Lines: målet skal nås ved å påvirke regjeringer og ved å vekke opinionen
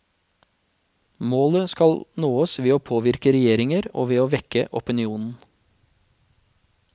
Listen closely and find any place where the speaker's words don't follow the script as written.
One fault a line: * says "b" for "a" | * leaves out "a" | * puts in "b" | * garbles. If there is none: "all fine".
all fine